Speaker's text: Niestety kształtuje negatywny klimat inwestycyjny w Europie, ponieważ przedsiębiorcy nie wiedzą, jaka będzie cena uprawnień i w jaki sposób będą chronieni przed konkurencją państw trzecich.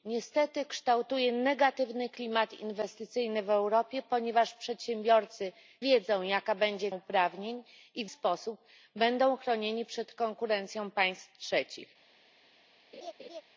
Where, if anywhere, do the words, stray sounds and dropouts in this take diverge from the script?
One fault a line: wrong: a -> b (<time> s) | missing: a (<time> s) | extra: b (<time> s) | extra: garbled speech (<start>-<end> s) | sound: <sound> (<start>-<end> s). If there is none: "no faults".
missing: nie (5.5 s)
missing: cena (6.9 s)
missing: jaki (8.1 s)
sound: laugh (12.9-13.4 s)